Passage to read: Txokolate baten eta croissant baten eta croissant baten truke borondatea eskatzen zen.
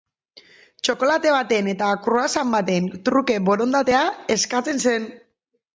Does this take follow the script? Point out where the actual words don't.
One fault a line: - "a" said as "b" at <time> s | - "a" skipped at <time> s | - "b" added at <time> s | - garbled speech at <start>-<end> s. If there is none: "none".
- "eta croissant baten" skipped at 2.9 s